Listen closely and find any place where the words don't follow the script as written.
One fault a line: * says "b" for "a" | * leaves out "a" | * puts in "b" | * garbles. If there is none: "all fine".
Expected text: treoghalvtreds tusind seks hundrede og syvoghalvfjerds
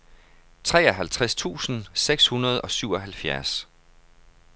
all fine